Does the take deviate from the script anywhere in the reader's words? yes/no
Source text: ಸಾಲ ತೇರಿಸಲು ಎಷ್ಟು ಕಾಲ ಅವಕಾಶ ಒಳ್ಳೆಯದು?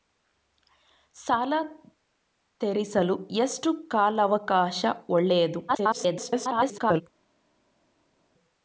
yes